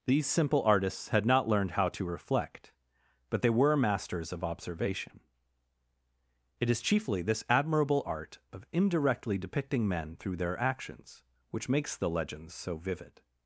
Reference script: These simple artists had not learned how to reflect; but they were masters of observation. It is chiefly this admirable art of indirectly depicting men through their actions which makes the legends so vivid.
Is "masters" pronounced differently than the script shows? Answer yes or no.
no